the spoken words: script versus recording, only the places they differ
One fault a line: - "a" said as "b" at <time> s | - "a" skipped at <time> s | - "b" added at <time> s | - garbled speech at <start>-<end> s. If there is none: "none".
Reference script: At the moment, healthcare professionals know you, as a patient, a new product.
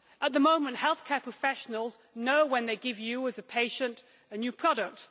- "when they give" added at 2.4 s